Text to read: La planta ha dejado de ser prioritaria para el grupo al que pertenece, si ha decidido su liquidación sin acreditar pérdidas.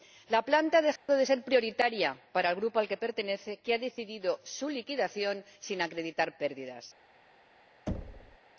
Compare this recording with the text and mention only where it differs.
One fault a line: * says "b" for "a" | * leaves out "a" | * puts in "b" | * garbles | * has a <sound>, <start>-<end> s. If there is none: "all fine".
* has a dropout, 1.0-1.1 s
* says "que" for "si"
* has a thud, 7.9-8.4 s